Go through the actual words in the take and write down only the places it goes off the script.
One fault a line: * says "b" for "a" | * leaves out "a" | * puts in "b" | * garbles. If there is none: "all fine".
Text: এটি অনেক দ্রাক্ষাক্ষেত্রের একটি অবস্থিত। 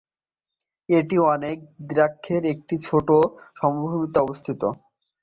* puts in "ছোট সমভূমিতে"